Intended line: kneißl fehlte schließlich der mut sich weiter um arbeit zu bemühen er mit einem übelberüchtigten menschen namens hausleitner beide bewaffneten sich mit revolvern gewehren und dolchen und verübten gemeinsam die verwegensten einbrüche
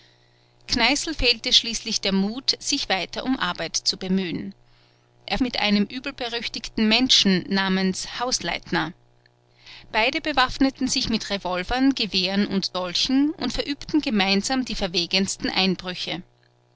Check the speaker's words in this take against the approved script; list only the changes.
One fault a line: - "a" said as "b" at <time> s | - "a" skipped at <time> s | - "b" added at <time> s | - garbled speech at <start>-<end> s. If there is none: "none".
none